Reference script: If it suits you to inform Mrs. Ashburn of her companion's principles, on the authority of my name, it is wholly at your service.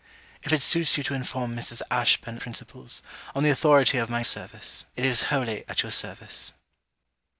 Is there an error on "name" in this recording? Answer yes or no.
yes